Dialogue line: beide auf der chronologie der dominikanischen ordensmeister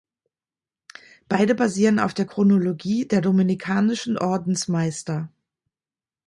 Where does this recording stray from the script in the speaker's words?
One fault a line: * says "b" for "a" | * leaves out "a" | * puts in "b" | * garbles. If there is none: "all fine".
* puts in "basieren"